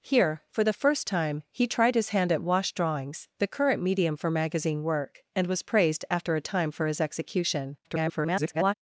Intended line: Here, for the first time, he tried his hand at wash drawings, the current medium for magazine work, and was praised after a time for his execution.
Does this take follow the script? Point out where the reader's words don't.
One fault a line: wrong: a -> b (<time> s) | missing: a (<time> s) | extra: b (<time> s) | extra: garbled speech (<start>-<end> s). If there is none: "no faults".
extra: garbled speech (7.8-8.7 s)